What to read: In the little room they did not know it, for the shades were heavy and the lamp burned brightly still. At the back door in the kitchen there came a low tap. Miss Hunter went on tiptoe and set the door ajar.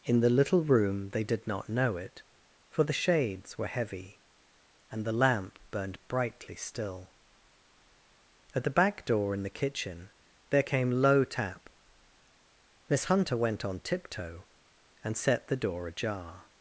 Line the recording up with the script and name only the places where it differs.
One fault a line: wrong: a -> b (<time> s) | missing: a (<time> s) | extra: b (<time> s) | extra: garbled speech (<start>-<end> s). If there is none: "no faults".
missing: a (10.9 s)